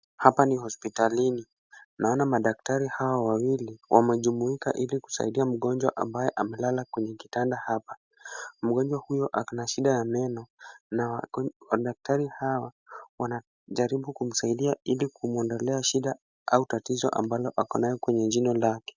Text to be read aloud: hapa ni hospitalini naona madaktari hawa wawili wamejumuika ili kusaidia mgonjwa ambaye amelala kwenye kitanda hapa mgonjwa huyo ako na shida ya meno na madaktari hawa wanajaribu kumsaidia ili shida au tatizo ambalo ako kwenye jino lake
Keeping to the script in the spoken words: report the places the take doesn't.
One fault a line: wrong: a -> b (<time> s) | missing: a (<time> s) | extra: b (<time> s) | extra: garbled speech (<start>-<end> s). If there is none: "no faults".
extra: kumwondolea (15.1 s)
extra: nayo (17.8 s)